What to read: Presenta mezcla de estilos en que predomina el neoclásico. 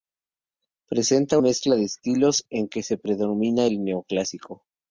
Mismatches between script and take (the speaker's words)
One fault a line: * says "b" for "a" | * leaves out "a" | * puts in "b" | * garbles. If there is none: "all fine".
all fine